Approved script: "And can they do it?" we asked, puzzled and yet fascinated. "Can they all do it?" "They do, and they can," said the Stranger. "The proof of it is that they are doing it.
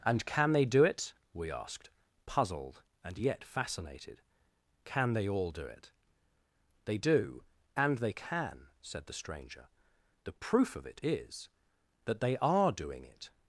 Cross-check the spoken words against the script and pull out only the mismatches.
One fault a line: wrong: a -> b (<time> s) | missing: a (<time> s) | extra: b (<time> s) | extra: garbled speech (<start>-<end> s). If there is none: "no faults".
no faults